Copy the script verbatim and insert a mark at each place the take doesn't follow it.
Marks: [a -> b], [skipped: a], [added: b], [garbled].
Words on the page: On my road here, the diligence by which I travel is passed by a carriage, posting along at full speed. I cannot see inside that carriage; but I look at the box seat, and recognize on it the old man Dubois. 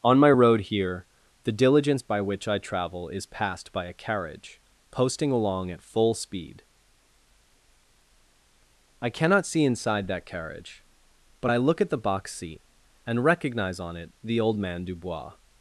On my road here, the diligence by which I travel is passed by a carriage, posting along at full speed. I cannot see inside that carriage; but I look at the box seat, and recognize on it the old man Dubois.